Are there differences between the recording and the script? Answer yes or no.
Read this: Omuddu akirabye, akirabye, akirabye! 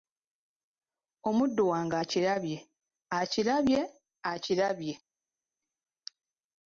yes